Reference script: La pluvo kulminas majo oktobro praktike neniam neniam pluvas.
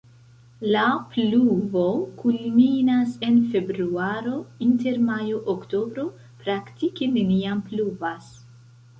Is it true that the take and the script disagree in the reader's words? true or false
true